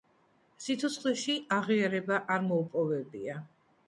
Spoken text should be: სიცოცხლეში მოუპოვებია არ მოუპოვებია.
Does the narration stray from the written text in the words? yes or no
yes